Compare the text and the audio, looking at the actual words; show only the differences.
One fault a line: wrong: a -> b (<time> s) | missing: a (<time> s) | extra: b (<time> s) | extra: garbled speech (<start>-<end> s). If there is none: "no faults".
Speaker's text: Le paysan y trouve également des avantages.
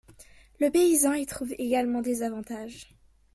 no faults